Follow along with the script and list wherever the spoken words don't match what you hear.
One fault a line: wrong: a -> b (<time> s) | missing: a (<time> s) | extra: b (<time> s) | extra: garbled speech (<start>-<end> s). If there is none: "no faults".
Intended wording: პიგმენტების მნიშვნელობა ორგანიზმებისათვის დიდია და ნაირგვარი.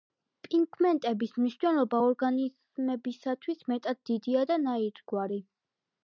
extra: მეტად (3.7 s)